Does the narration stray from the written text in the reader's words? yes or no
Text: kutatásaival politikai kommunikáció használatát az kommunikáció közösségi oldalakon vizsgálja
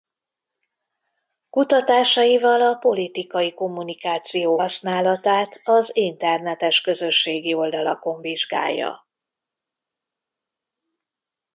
yes